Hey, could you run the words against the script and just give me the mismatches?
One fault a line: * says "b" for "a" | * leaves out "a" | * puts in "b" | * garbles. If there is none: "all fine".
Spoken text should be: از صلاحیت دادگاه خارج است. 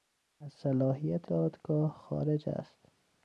all fine